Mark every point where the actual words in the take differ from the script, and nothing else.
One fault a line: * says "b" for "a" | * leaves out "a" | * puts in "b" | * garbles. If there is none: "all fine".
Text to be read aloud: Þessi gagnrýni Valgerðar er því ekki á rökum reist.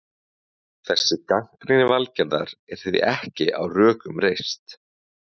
all fine